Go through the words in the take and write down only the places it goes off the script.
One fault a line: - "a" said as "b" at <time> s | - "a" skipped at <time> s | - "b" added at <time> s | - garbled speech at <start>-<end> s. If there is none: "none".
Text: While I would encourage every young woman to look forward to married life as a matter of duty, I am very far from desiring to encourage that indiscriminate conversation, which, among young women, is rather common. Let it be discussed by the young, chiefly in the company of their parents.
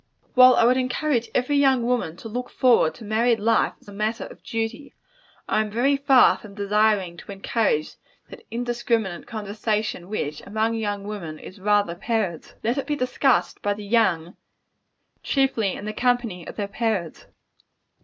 - "common" said as "parents" at 12.0 s